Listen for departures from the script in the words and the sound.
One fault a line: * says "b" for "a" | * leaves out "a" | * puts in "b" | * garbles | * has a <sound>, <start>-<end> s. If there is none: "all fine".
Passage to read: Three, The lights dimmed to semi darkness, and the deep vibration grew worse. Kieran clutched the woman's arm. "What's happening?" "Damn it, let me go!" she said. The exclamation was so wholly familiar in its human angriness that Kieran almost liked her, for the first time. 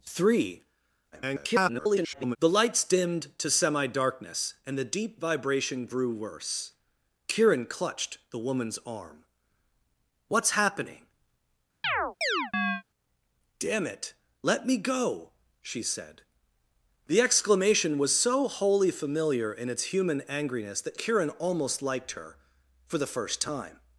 * garbles
* has a chirp, 11.8-12.8 s